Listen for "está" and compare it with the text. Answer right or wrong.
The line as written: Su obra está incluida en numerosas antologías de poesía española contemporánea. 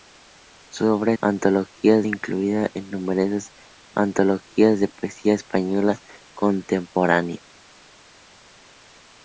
wrong